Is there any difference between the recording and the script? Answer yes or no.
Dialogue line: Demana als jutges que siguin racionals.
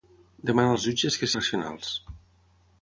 yes